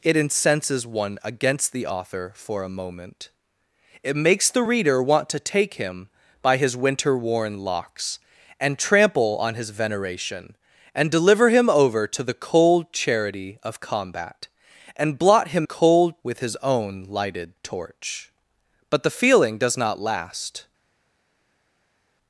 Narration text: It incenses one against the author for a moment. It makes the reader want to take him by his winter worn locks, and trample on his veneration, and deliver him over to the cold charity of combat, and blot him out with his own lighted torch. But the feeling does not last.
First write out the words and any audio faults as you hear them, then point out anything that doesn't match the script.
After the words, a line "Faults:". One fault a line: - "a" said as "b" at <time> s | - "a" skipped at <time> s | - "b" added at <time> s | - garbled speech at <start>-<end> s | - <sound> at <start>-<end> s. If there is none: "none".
It incenses one against the author for a moment. It makes the reader want to take him by his winter worn locks, and trample on his veneration, and deliver him over to the cold charity of combat, and blot him cold with his own lighted torch. But the feeling does not last.
Faults:
- "out" said as "cold" at 15.6 s